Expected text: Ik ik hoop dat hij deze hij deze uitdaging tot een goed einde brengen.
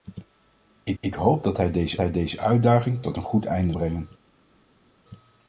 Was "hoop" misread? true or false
false